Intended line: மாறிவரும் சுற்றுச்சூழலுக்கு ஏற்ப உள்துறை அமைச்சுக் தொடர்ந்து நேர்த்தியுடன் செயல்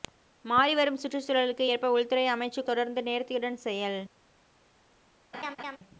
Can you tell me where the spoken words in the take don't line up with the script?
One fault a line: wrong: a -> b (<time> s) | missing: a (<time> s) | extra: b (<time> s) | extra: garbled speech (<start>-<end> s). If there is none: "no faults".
no faults